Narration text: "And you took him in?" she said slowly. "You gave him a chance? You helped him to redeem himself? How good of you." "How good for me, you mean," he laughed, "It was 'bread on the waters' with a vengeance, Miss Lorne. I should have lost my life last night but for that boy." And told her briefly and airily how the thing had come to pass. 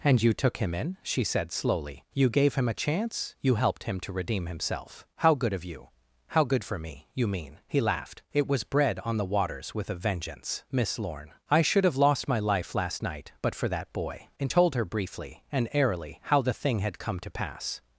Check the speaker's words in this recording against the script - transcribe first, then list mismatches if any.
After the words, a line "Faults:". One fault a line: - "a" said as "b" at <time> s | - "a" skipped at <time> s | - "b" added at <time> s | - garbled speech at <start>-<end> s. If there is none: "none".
"And you took him in?" she said slowly. "You gave him a chance? You helped him to redeem himself? How good of you." "How good for me, you mean," he laughed, "It was 'bread on the waters' with a vengeance, Miss Lorne. I should have lost my life last night but for that boy." And told her briefly and airily how the thing had come to pass.
Faults:
none